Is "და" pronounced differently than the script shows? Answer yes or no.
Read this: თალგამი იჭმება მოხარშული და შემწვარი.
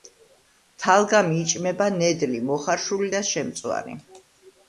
no